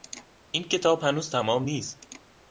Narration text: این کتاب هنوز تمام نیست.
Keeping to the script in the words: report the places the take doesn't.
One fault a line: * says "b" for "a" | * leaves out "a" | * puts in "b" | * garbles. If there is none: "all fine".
all fine